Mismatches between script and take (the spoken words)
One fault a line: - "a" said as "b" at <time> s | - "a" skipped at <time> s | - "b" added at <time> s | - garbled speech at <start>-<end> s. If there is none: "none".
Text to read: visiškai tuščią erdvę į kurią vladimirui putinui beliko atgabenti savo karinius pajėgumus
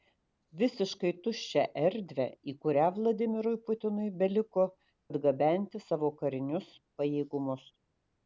none